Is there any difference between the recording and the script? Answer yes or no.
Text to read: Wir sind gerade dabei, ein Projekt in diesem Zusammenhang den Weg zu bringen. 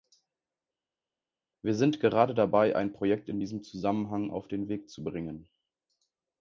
yes